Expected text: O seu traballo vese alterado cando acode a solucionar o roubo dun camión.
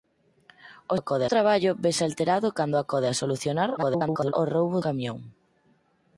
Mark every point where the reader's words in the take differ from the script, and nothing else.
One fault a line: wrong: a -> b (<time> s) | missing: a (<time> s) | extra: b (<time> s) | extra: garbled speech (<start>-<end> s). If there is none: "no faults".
wrong: seu -> acode (0.9 s)
extra: garbled speech (3.8-4.3 s)
missing: dun (4.8 s)